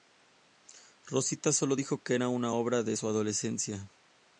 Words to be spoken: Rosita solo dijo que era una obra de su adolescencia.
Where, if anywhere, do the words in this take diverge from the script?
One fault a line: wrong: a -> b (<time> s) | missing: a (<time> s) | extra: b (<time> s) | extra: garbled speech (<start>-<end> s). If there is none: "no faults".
no faults